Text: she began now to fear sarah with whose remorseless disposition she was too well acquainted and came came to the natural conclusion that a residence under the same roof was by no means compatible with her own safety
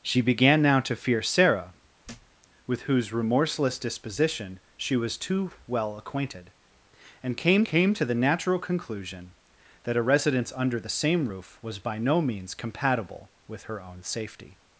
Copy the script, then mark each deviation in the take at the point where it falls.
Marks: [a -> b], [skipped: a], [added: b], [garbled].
she began now to fear sarah with whose remorseless disposition she was too well acquainted and came came to the natural conclusion that a residence under the same roof was by no means compatible with her own safety